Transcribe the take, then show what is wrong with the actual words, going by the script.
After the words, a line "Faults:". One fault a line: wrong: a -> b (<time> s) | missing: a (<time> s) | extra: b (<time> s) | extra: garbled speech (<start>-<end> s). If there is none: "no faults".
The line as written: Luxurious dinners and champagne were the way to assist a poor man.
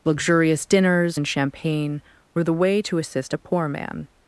Luxurious dinners and champagne were the way to assist a poor man.
Faults:
no faults